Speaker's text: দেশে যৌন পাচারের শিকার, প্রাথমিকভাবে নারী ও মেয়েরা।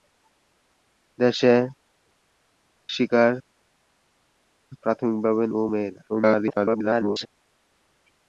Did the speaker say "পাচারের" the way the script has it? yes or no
no